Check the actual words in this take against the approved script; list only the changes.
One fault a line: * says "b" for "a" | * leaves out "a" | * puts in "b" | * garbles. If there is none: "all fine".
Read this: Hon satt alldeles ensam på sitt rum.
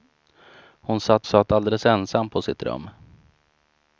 * puts in "satt"